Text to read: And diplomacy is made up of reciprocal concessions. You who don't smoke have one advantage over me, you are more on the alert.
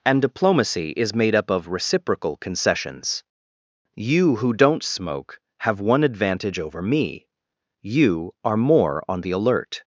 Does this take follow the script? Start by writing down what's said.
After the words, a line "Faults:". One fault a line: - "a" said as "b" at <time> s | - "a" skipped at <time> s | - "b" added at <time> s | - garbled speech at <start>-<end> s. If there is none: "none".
And diplomacy is made up of reciprocal concessions. You who don't smoke have one advantage over me, you are more on the alert.
Faults:
none